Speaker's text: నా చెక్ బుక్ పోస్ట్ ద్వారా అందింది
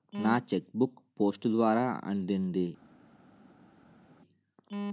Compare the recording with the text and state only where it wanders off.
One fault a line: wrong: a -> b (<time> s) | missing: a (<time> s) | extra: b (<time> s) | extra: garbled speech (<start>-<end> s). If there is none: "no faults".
no faults